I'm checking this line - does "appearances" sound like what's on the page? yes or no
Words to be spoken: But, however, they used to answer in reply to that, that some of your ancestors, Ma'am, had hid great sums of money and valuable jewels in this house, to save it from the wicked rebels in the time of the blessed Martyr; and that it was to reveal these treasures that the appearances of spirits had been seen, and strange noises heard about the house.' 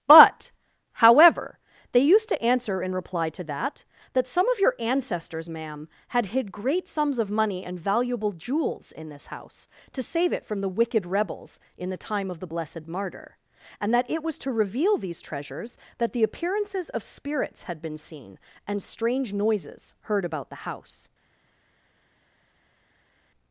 yes